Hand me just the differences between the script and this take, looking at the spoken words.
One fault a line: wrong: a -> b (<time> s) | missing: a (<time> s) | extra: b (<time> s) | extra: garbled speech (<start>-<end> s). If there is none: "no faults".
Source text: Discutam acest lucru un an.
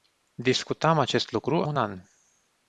no faults